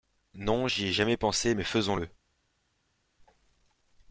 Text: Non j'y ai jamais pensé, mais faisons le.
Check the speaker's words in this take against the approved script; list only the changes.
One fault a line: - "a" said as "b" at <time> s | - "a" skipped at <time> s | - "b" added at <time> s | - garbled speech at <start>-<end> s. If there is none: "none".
none